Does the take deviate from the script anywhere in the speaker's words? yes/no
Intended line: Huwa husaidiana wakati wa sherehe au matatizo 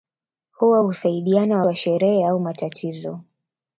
yes